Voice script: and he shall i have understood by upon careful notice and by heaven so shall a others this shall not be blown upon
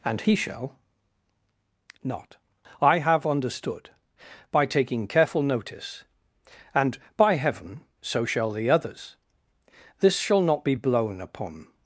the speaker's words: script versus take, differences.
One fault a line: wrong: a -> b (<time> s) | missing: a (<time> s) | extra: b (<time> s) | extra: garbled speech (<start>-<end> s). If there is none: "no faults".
extra: not (2.0 s)
wrong: upon -> taking (4.7 s)
wrong: a -> the (8.5 s)